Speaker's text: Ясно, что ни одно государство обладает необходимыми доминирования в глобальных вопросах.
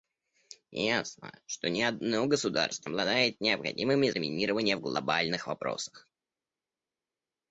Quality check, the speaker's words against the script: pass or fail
pass